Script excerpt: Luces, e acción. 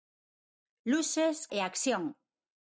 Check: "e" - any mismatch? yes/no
no